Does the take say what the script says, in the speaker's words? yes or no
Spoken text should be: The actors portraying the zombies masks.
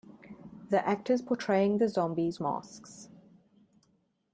yes